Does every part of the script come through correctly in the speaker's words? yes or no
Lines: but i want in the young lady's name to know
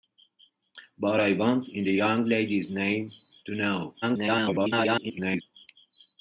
no